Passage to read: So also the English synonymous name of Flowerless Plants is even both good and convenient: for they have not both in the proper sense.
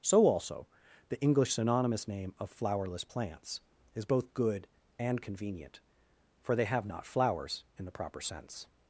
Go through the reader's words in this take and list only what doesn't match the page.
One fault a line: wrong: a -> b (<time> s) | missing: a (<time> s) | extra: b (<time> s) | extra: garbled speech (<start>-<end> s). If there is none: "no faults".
missing: even (4.0 s)
wrong: both -> flowers (7.0 s)